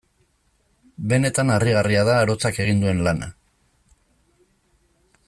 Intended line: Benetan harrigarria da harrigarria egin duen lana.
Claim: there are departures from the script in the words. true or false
true